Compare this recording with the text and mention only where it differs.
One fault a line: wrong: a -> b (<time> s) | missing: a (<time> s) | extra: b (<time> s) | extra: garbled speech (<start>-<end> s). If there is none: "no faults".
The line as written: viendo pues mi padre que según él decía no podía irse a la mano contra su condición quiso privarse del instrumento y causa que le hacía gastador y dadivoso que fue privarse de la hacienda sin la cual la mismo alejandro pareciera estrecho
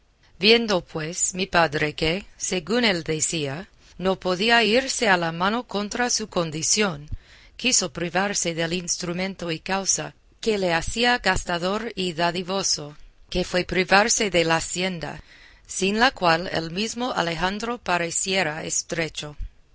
wrong: la -> el (16.5 s)